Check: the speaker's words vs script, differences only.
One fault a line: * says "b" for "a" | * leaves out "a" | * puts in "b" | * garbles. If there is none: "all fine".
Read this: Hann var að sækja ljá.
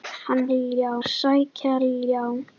* says "ljá" for "var"